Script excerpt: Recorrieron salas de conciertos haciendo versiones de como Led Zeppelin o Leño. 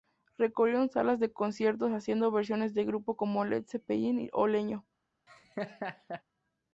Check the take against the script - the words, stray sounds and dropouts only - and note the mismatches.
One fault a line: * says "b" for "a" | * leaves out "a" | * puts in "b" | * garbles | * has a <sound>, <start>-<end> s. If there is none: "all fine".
* puts in "grupos"
* has a laugh, 5.3-6.2 s